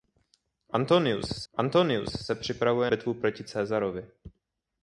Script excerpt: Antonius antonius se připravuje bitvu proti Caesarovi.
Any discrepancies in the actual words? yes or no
no